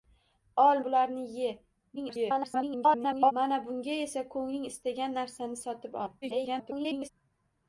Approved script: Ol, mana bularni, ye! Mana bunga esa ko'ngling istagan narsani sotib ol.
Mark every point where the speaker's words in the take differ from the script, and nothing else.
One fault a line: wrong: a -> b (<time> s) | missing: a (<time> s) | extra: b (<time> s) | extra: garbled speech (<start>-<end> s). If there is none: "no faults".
missing: mana (0.8 s)
extra: garbled speech (2.0-3.3 s)
extra: garbled speech (6.2-7.1 s)